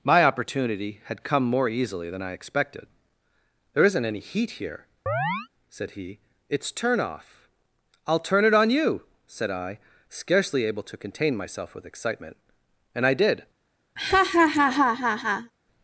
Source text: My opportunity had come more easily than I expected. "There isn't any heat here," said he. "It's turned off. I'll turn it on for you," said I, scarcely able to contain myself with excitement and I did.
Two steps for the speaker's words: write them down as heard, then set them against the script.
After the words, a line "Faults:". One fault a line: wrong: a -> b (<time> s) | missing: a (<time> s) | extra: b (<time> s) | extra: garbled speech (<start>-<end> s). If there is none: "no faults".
My opportunity had come more easily than I expected. "There isn't any heat here," said he. "It's turn off. I'll turn it on you," said I, scarcely able to contain myself with excitement and I did.
Faults:
wrong: turned -> turn (6.7 s)
missing: for (8.7 s)